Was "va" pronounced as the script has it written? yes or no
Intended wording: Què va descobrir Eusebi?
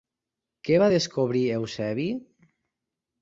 yes